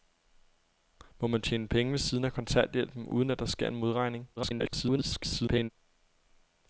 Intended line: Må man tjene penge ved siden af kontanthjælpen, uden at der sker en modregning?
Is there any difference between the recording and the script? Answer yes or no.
yes